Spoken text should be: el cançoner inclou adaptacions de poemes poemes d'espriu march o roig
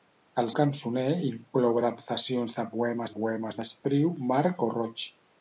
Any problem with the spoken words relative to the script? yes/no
no